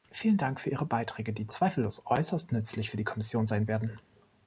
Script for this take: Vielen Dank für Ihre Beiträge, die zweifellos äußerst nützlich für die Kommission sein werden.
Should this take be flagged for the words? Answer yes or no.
no